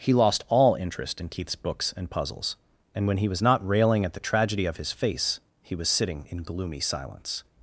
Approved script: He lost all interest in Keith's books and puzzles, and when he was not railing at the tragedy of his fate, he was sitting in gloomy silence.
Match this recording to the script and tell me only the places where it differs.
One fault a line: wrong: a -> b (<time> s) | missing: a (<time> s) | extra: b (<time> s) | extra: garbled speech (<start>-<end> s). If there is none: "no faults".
wrong: fate -> face (4.9 s)